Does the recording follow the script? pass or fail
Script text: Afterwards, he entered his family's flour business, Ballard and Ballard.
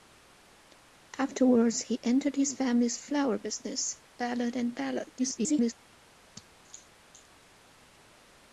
fail